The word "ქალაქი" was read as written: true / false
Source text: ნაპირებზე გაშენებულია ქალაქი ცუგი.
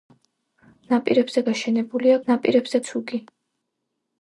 false